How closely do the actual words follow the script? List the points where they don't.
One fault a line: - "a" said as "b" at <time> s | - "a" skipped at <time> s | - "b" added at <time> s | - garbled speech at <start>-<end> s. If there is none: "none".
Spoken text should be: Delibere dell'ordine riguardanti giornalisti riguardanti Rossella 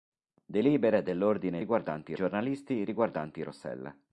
none